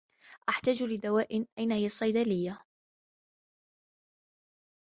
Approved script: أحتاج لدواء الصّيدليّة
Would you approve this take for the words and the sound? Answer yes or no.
no